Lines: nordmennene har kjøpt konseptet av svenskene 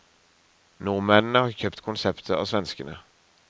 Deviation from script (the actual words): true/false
false